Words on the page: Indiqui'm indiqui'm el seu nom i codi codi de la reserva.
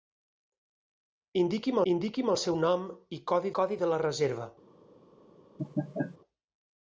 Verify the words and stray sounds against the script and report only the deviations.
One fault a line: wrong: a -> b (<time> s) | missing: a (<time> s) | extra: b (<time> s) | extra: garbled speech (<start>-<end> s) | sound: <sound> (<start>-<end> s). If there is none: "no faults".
sound: laugh (5.6-6.2 s)